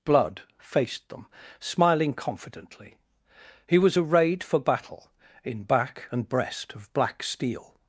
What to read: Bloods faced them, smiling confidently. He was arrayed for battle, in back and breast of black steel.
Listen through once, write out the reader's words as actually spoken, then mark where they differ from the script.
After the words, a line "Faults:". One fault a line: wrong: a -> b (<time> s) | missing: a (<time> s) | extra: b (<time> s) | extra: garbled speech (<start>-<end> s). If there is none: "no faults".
Blood faced them, smiling confidently. He was arrayed for battle, in back and breast of black steel.
Faults:
wrong: Bloods -> Blood (0.0 s)